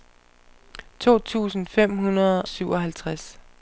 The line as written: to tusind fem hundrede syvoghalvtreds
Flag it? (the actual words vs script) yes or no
no